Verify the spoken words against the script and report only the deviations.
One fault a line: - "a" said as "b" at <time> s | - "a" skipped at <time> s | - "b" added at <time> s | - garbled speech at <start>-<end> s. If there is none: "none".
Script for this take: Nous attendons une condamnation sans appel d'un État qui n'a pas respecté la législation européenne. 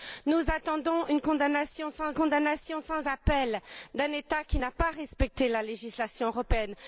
- "condamnation sans" added at 2.1 s